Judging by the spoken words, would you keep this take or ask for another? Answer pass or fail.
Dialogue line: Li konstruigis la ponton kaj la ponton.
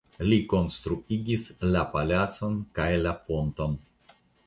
fail